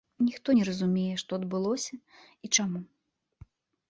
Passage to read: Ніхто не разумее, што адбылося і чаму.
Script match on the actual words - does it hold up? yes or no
yes